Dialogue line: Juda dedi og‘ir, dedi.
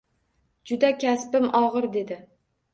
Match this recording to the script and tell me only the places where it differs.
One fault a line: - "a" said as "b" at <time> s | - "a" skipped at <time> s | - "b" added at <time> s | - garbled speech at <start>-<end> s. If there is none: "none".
- "dedi" said as "kasbim" at 1.1 s